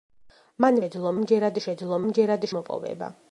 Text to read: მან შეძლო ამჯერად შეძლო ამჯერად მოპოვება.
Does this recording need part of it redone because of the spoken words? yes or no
no